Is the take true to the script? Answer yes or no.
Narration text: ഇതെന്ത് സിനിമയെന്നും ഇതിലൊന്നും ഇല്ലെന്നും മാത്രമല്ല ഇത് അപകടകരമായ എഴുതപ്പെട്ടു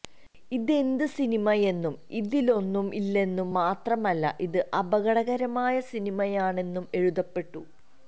no